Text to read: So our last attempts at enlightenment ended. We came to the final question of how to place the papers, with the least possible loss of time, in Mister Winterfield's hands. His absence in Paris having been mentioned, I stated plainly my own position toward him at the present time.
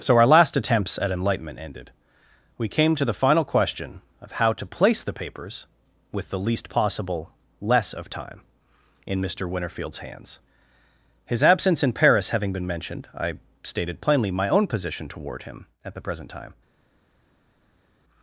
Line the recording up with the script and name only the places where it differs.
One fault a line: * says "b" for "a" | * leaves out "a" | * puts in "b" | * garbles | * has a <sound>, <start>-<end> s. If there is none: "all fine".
* says "less" for "loss"